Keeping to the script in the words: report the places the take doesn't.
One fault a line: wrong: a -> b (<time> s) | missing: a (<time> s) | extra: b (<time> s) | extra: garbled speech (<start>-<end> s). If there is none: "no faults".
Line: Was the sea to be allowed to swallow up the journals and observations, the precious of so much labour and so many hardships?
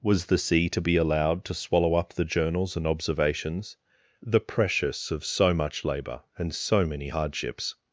no faults